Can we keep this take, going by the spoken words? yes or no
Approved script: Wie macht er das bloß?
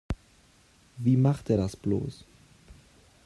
yes